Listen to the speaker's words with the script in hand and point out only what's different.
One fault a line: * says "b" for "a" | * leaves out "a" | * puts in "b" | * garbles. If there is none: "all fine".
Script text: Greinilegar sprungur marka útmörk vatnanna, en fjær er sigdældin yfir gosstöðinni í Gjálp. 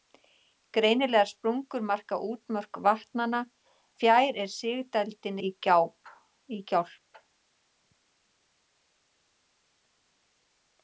* leaves out "en"
* leaves out "yfir gosstöðinni"